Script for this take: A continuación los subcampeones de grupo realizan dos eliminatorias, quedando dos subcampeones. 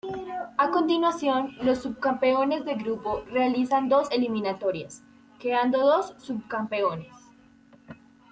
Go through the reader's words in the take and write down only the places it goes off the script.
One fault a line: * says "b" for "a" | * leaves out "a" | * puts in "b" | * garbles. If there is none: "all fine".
all fine